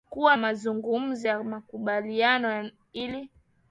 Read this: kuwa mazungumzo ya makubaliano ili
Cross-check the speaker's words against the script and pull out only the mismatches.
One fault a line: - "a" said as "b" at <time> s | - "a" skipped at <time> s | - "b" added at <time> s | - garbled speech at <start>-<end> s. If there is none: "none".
none